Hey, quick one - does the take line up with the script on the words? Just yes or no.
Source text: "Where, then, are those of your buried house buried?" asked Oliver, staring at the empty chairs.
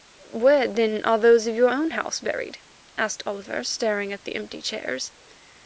no